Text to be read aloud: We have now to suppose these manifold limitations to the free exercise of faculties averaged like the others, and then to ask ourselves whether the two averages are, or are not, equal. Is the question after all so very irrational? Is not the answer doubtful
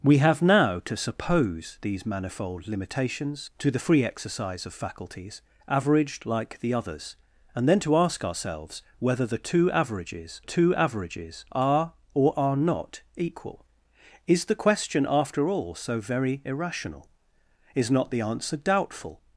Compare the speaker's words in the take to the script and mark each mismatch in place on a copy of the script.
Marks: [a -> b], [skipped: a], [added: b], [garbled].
We have now to suppose these manifold limitations to the free exercise of faculties averaged like the others, and then to ask ourselves whether the two averages [added: two averages] are, or are not, equal. Is the question after all so very irrational? Is not the answer doubtful